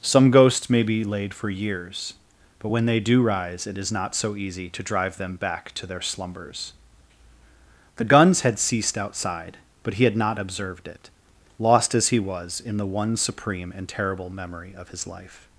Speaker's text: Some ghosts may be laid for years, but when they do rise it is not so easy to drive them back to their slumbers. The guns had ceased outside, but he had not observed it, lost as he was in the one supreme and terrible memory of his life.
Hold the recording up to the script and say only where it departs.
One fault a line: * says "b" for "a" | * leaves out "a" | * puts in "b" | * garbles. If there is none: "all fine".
all fine